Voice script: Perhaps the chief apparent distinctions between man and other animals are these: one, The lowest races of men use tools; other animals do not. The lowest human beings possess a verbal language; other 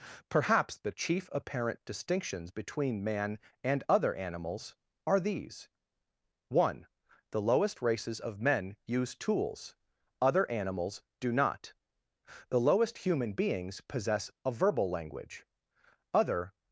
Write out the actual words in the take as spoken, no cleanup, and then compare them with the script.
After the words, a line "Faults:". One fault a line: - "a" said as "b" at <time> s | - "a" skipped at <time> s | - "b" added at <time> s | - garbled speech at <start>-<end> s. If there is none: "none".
Perhaps the chief apparent distinctions between man and other animals are these: one, The lowest races of men use tools; other animals do not. The lowest human beings possess a verbal language; other
Faults:
none